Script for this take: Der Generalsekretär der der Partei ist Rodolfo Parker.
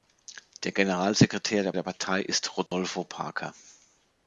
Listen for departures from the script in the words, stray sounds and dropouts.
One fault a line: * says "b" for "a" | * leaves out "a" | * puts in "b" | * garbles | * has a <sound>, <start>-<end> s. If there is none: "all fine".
* has a dropout, 2.7-2.7 s